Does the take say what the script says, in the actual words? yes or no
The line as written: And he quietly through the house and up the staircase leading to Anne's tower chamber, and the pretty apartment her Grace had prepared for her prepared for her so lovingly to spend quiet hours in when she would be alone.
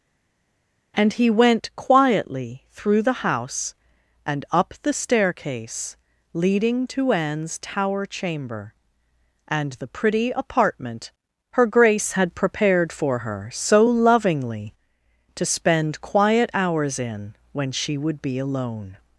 no